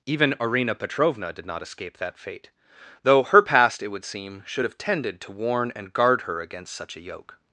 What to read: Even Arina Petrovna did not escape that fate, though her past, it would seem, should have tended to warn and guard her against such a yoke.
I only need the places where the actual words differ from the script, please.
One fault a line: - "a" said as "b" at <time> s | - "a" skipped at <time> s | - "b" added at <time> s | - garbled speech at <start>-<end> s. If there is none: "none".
none